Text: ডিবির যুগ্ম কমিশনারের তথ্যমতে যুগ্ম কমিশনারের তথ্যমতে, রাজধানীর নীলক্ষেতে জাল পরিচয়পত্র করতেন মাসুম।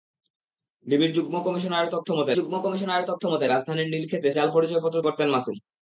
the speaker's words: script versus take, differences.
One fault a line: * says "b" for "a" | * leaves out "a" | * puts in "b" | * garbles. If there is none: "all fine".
all fine